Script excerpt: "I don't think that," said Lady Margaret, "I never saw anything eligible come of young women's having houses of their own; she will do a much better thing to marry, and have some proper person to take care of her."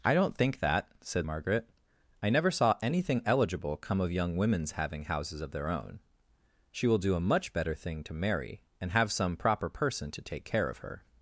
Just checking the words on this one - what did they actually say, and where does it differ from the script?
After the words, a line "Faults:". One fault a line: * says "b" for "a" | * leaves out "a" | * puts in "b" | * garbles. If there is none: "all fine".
"I don't think that," said Margaret, "I never saw anything eligible come of young women's having houses of their own; she will do a much better thing to marry, and have some proper person to take care of her."
Faults:
* leaves out "Lady"